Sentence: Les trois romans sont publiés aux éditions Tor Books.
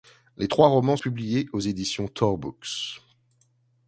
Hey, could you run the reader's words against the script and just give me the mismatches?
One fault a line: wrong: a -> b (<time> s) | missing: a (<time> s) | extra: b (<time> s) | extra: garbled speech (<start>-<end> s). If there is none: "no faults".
missing: sont (1.0 s)